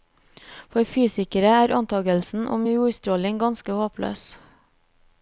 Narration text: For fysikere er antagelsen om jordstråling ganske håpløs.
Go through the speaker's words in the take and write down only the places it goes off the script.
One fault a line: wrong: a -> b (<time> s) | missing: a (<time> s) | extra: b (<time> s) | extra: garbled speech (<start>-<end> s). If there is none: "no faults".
no faults